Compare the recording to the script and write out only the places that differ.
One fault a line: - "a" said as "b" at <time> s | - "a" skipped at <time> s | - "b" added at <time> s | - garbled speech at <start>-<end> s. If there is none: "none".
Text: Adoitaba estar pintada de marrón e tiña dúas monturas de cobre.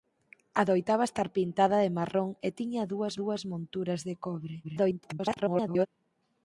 - "dúas" added at 3.2 s
- garbled speech at 4.6-5.9 s